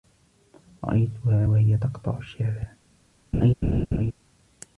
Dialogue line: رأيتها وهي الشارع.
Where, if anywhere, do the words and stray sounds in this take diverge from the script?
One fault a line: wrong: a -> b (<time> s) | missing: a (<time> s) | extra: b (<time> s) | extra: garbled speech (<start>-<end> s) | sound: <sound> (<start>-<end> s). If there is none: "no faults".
extra: تقطع (1.7 s)
sound: laugh (3.3-4.1 s)